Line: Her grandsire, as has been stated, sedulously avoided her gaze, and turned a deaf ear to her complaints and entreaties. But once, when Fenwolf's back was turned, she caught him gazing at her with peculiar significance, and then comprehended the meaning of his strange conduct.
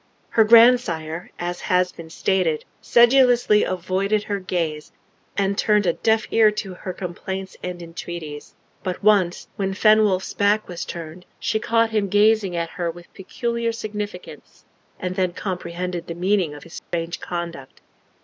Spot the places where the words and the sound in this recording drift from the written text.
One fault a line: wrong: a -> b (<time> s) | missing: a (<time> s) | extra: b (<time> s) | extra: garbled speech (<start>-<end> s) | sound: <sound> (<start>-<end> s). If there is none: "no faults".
sound: dropout (16.8-16.9 s)